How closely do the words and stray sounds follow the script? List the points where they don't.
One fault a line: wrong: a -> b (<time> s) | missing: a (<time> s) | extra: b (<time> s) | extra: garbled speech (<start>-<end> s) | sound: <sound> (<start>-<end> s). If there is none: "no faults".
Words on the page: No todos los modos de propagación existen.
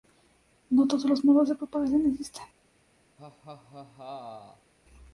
sound: laugh (3.2-4.7 s)